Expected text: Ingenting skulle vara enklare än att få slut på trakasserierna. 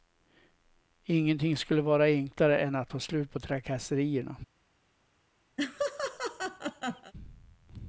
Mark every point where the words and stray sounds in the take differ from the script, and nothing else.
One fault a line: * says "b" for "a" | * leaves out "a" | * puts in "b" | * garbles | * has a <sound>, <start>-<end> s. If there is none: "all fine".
* has a laugh, 5.6-7.1 s